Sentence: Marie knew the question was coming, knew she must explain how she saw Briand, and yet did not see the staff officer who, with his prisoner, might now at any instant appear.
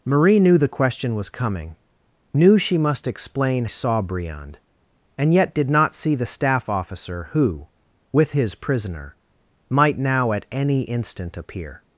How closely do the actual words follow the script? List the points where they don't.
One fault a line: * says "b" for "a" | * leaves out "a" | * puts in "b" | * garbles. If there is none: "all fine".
* leaves out "how she"